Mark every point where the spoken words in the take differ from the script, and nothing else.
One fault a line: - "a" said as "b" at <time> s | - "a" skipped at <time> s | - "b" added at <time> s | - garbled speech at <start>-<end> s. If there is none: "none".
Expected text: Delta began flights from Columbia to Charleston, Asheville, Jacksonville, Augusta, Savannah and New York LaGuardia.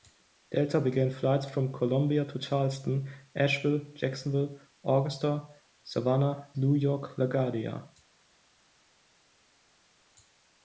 - "and" skipped at 6.5 s